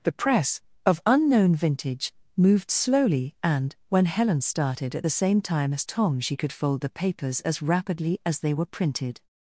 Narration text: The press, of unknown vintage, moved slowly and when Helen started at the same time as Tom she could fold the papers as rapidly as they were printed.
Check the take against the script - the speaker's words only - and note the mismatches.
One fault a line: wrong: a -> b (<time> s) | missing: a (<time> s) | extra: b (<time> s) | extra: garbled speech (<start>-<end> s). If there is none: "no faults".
no faults